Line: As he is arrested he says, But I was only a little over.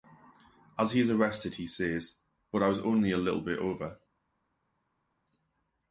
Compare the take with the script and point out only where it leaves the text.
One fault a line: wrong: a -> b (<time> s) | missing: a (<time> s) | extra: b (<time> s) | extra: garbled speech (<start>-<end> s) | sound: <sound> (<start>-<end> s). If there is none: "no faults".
extra: bit (3.4 s)